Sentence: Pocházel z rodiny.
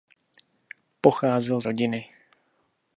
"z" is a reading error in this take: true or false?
false